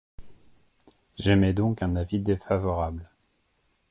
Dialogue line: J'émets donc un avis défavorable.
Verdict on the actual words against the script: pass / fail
pass